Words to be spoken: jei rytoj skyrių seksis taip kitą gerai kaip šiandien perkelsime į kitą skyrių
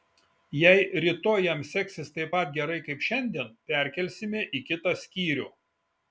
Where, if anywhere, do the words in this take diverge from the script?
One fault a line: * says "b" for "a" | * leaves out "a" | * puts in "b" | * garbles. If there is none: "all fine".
* says "jam" for "skyrių"
* says "pat" for "kitą"